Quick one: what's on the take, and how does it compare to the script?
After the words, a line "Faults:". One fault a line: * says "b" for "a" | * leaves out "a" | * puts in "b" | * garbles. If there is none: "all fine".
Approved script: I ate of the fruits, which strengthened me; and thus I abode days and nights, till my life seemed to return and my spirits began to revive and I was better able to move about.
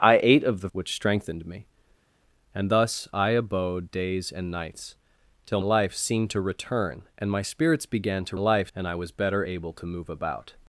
I ate of the which strengthened me; and thus I abode days and nights, till life seemed to return and my spirits began to life and I was better able to move about.
Faults:
* leaves out "fruits"
* leaves out "my"
* says "life" for "revive"